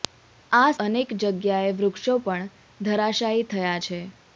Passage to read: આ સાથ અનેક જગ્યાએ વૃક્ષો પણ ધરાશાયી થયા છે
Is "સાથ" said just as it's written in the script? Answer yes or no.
no